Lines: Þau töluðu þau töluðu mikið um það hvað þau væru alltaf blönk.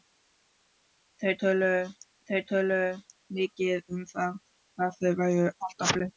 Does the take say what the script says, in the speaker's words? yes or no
yes